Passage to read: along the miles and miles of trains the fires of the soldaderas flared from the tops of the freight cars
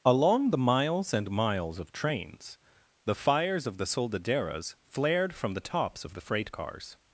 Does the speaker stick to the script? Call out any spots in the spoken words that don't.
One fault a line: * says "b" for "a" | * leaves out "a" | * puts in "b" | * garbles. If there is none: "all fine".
all fine